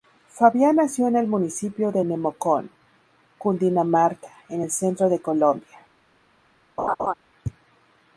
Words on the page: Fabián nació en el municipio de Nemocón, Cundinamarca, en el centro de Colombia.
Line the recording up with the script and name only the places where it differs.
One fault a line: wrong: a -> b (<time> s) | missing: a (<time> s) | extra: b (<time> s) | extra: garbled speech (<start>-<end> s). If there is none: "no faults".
no faults